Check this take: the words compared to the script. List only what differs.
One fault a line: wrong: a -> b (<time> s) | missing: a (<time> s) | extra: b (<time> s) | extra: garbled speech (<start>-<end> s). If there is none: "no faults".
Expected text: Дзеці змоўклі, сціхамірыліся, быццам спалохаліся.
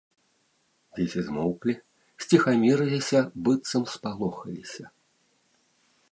no faults